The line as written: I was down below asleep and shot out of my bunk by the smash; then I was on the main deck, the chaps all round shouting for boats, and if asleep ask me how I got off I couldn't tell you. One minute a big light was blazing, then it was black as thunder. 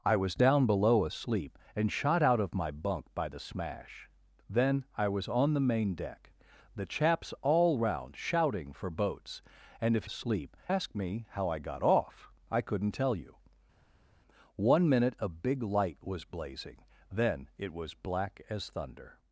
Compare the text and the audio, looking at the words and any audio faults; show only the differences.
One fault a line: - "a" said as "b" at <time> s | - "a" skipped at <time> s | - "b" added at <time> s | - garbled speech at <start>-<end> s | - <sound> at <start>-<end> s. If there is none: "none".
none